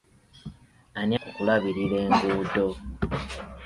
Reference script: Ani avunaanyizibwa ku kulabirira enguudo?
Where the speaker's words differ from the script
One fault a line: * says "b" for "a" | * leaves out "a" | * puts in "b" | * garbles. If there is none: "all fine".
* leaves out "avunaanyizibwa"